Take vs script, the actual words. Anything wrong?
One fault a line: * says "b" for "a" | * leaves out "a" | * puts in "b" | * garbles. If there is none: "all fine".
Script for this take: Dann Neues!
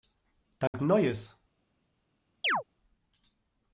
all fine